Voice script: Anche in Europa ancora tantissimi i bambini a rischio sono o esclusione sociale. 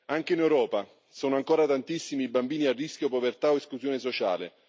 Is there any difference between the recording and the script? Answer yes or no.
yes